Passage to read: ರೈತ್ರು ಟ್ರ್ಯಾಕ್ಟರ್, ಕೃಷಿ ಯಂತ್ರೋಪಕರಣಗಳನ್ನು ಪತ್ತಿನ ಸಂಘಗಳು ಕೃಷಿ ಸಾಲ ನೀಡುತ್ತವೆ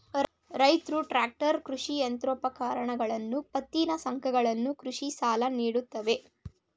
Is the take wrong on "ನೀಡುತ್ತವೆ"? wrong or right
right